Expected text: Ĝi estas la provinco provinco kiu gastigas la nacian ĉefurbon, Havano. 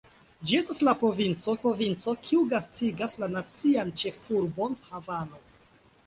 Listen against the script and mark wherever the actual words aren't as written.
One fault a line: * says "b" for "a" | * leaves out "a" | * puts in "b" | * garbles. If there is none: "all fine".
all fine